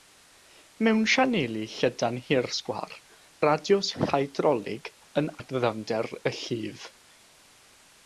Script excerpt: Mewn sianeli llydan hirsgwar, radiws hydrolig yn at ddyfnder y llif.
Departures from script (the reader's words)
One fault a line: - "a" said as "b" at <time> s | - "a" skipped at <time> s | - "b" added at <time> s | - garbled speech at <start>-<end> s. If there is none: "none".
none